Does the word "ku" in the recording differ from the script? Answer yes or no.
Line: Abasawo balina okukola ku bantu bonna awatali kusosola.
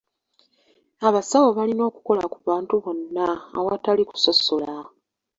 no